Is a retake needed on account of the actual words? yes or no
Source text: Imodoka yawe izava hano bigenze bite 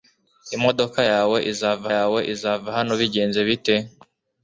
yes